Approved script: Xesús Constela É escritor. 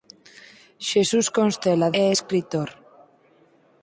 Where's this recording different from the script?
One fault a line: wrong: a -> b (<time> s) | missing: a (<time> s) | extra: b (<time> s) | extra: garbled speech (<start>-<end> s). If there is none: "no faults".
no faults